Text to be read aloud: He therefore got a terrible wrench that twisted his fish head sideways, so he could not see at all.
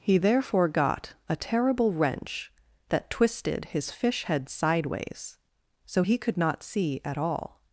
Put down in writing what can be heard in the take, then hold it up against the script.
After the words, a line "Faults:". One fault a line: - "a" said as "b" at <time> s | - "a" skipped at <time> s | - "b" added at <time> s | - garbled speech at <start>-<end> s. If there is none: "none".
He therefore got a terrible wrench that twisted his fish head sideways, so he could not see at all.
Faults:
none